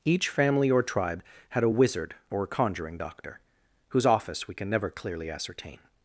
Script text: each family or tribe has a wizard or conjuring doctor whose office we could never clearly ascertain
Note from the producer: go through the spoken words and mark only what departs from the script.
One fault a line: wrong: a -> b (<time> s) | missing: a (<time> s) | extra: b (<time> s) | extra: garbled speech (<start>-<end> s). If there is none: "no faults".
wrong: has -> had (1.5 s)
wrong: could -> can (4.5 s)